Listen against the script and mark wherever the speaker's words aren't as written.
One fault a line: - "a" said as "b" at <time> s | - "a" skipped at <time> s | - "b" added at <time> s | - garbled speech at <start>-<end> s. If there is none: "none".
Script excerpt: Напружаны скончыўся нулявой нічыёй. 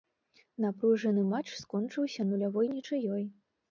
- "матч" added at 1.4 s